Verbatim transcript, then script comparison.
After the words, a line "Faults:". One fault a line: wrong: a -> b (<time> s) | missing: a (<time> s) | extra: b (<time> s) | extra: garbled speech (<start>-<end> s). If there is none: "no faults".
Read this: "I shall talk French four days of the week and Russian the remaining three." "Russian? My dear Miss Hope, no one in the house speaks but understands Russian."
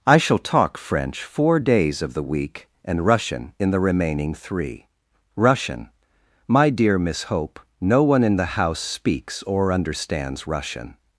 "I shall talk French four days of the week and Russian in the remaining three." "Russian? My dear Miss Hope, no one in the house speaks or understands Russian."
Faults:
extra: in (3.6 s)
wrong: but -> or (9.4 s)